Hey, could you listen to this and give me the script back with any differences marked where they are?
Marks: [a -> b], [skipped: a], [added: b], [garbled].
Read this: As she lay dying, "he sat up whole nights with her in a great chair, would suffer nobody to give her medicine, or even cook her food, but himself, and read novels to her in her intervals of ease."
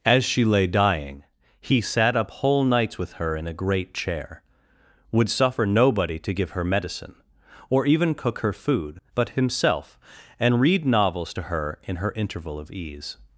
As she lay dying, "he sat up whole nights with her in a great chair, would suffer nobody to give her medicine, or even cook her food, but himself, and read novels to her in her [intervals -> interval] of ease."